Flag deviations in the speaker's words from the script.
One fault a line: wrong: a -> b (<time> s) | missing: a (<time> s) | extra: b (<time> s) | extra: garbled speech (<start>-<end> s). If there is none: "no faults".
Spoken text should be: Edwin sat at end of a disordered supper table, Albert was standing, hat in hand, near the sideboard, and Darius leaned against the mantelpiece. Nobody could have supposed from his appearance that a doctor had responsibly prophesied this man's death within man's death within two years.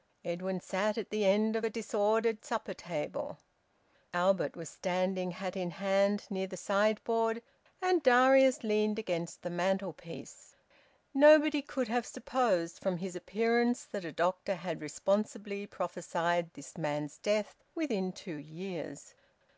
extra: the (1.1 s)
missing: man's death within (18.1 s)